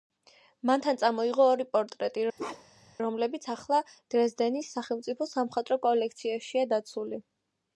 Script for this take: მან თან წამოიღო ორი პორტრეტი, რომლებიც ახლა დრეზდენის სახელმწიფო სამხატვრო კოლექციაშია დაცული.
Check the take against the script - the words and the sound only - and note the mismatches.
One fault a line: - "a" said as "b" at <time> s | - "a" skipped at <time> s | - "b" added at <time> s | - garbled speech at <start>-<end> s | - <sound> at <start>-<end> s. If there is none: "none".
- bark at 2.4-3.0 s